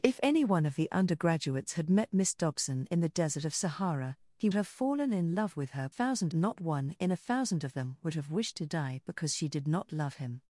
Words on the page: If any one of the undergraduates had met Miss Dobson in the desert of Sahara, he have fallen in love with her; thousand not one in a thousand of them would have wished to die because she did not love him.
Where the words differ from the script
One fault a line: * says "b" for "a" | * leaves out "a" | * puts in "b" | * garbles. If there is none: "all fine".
all fine